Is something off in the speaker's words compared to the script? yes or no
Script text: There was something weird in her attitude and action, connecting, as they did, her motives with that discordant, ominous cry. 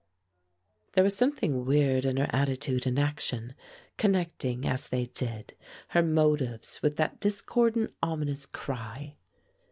no